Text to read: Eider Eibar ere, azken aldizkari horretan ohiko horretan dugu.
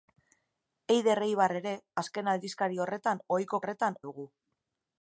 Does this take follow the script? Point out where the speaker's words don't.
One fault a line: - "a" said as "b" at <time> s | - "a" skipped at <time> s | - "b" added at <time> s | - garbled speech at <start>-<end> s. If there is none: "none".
none